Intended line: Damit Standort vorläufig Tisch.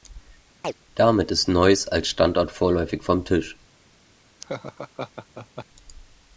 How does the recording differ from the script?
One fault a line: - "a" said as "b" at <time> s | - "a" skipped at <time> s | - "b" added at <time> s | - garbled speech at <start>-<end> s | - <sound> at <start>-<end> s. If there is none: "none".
- chirp at 0.6-0.7 s
- "ist Neuss als" added at 1.3 s
- "vom" added at 3.0 s
- laugh at 4.4-5.7 s